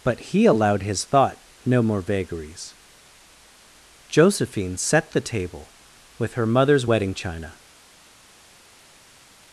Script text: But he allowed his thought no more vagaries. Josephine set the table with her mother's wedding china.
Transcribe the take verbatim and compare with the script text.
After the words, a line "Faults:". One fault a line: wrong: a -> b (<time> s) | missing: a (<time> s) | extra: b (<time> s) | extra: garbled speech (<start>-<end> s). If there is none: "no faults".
But he allowed his thought no more vagaries. Josephine set the table with her mother's wedding china.
Faults:
no faults